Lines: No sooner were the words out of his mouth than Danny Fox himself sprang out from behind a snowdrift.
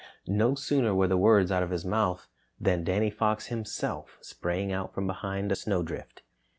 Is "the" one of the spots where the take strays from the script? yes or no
no